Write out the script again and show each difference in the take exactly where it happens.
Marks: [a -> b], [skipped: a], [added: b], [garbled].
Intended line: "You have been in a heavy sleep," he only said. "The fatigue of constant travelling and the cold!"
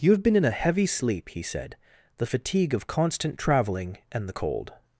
"You have been in a heavy sleep," he [skipped: only] said. "The fatigue of constant travelling and the cold!"